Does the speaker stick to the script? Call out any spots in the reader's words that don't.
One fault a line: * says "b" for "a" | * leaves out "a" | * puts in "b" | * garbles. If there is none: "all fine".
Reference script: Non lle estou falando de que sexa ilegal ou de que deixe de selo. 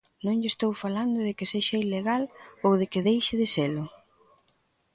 all fine